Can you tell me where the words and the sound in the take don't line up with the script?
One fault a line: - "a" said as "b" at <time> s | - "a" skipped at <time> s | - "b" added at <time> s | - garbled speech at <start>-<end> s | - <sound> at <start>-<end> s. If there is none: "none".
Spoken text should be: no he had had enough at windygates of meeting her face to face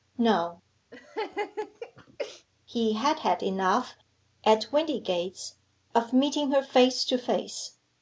- laugh at 0.9-2.5 s